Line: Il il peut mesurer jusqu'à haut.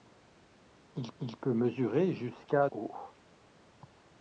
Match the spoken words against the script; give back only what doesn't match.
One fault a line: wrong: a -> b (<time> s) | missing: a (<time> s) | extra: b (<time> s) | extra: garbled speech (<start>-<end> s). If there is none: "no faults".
no faults